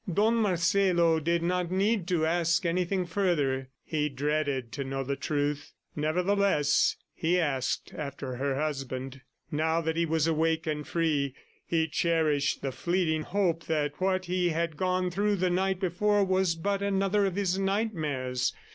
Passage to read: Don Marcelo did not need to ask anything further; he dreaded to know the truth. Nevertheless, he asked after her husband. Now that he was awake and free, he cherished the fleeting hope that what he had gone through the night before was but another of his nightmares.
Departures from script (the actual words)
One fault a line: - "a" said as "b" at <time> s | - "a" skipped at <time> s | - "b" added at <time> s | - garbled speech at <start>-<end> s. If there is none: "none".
none